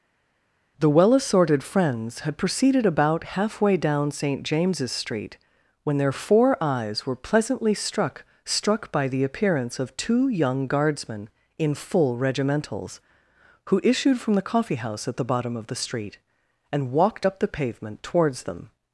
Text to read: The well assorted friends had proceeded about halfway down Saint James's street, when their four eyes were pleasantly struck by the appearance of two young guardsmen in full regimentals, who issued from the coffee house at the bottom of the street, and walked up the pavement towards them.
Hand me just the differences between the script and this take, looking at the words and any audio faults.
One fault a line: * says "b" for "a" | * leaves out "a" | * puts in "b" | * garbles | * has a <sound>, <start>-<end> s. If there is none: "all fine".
* puts in "struck"